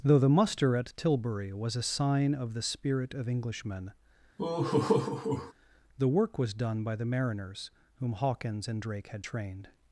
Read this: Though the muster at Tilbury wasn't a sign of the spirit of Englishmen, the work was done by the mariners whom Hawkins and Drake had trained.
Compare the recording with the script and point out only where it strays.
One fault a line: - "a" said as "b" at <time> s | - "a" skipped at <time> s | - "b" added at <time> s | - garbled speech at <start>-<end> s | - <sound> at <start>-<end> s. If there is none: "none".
- "wasn't" said as "was" at 1.5 s
- laugh at 4.4-5.5 s